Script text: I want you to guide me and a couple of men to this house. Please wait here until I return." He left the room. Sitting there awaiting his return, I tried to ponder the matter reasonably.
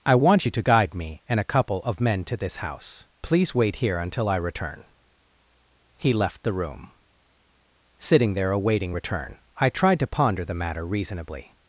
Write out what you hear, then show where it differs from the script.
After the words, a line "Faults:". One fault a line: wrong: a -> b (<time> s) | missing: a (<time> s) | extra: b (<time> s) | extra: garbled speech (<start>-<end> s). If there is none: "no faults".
I want you to guide me and a couple of men to this house. Please wait here until I return." He left the room. Sitting there awaiting return, I tried to ponder the matter reasonably.
Faults:
missing: his (8.9 s)